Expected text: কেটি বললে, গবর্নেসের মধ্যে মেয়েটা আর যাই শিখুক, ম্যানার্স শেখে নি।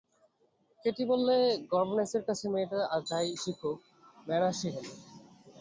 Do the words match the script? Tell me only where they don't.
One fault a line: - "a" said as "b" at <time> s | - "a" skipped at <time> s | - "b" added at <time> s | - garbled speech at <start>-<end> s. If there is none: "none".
- "মধ্যে" said as "কাছে" at 2.3 s